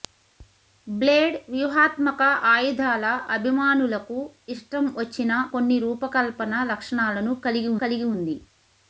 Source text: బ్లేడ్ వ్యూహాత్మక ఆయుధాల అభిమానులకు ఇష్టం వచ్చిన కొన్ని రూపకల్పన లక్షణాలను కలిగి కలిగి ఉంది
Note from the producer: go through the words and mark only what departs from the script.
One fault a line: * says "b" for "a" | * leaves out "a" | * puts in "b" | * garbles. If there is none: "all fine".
all fine